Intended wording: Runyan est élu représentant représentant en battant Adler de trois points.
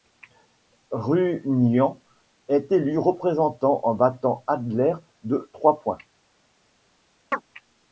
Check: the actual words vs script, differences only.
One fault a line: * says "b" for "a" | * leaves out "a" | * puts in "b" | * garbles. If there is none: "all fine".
* leaves out "représentant"